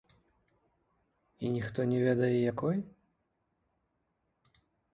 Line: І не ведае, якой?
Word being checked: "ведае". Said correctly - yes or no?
yes